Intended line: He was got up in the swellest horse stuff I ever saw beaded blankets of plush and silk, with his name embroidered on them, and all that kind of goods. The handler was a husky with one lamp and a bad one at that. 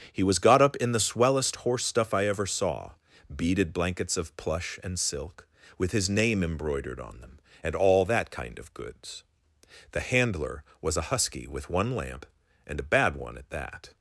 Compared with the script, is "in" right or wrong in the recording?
right